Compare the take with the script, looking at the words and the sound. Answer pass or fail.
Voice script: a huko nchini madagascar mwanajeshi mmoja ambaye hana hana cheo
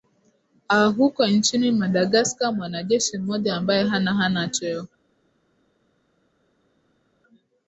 pass